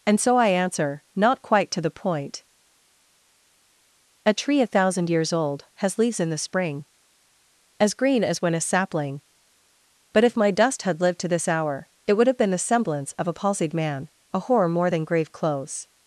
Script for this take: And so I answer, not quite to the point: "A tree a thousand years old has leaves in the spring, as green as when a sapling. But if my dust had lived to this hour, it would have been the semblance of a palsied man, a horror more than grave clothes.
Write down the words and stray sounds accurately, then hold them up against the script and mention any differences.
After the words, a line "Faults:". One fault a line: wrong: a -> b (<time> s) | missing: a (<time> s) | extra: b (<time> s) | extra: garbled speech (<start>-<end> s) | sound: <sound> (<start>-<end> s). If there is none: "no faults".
And so I answer, not quite to the point: "A tree a thousand years old has leaves in the spring, as green as when a sapling. But if my dust had lived to this hour, it would have been the semblance of a palsied man, a horror more than grave clothes.
Faults:
no faults